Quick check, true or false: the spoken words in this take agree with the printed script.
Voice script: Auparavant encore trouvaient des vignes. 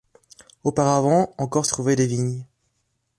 true